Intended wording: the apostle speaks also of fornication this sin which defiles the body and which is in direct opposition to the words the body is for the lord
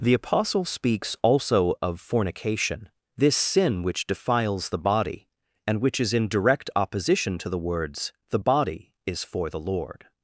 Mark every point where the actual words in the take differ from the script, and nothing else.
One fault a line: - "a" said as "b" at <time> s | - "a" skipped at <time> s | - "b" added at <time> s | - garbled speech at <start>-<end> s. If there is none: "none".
none